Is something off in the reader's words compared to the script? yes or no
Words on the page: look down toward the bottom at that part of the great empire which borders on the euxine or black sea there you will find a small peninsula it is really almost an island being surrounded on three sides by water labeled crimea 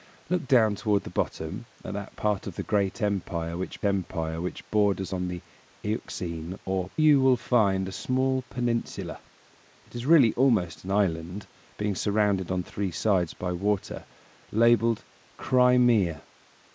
yes